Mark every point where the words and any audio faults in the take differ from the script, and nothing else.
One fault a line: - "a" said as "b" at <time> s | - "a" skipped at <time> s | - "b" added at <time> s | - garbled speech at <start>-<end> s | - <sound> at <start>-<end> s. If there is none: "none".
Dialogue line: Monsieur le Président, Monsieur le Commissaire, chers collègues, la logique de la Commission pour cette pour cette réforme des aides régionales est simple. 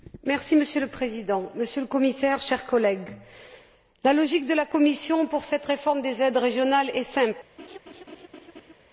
- "pour cette" skipped at 5.7 s
- laugh at 7.6-8.7 s